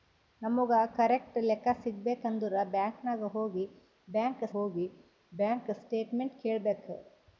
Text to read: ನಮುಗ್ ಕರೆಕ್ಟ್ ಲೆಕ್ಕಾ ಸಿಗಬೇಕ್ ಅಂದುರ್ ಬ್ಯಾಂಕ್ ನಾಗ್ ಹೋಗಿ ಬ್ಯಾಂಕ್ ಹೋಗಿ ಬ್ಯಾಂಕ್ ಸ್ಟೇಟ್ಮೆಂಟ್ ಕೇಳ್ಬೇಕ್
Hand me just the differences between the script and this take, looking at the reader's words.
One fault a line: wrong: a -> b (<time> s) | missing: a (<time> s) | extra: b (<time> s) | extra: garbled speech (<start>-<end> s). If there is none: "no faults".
no faults